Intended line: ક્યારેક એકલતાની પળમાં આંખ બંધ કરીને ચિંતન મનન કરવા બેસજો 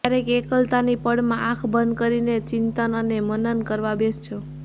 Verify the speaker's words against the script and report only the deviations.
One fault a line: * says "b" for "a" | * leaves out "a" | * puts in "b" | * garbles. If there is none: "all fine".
* puts in "અને"